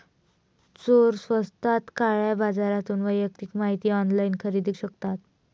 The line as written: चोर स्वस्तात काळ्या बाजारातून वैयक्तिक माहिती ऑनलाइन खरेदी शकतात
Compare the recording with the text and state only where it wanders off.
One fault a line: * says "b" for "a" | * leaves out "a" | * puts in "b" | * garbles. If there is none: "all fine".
all fine